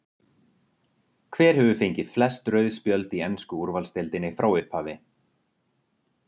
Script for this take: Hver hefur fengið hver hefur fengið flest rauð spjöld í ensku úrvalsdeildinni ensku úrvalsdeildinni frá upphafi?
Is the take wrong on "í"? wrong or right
right